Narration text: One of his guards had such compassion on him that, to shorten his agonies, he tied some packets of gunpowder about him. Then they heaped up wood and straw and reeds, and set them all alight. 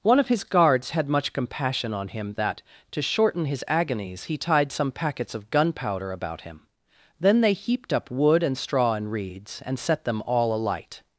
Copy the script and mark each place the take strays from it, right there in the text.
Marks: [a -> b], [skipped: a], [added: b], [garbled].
One of his guards had [such -> much] compassion on him that, to shorten his agonies, he tied some packets of gunpowder about him. Then they heaped up wood and straw and reeds, and set them all alight.